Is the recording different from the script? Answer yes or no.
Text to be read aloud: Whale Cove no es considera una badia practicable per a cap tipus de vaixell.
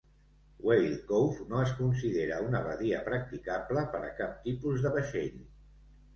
no